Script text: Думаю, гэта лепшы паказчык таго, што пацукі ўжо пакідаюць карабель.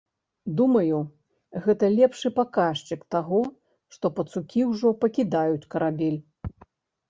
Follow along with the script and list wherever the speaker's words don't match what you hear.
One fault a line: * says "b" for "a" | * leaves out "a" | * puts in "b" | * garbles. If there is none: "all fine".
all fine